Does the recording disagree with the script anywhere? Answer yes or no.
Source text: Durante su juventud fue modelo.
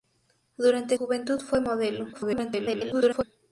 yes